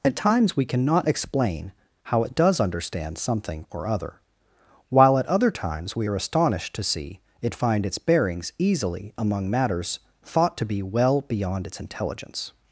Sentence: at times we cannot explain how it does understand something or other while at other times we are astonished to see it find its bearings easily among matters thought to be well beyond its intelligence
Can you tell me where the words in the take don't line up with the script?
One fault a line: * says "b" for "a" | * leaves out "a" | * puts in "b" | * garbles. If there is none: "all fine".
all fine